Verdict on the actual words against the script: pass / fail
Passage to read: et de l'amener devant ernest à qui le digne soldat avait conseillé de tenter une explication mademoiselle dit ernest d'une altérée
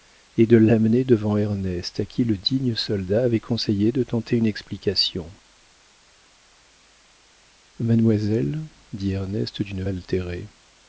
pass